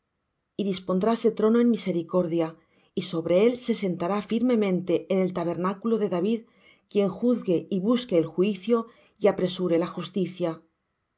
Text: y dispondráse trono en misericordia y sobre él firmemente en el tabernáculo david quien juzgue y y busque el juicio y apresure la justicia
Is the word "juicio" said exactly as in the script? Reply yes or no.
yes